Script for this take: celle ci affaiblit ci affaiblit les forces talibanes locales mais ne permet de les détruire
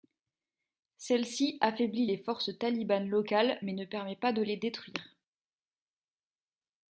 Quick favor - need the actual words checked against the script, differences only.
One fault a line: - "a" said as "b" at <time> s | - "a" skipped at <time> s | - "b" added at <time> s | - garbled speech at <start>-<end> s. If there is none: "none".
- "ci affaiblit" skipped at 2.1 s
- "pas" added at 4.1 s